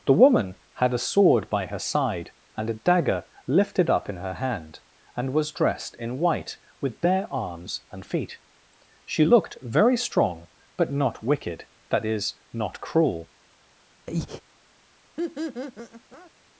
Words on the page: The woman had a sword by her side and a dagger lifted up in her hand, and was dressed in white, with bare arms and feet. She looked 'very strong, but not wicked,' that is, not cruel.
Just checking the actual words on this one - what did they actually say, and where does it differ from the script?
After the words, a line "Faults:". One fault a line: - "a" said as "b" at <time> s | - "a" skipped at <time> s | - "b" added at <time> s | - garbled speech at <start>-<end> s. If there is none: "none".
The woman had a sword by her side and a dagger lifted up in her hand, and was dressed in white, with bare arms and feet. She looked 'very strong, but not wicked,' that is, not cruel.
Faults:
none